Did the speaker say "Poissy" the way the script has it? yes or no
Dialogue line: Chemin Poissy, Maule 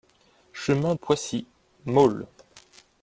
yes